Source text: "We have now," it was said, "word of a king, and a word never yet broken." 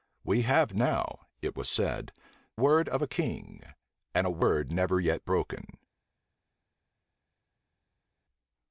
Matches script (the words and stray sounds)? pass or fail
pass